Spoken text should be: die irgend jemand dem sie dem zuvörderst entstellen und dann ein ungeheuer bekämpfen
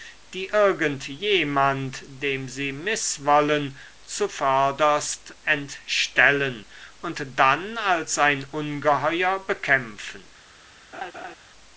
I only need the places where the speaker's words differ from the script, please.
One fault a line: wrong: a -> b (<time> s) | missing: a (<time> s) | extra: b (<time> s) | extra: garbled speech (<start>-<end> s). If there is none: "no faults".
wrong: dem -> mißwollen (2.7 s)
extra: als (7.8 s)